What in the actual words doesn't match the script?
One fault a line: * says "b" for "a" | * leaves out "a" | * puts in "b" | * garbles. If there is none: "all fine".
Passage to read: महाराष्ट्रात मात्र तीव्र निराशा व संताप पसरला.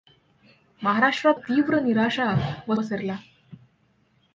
* leaves out "मात्र"
* leaves out "संताप"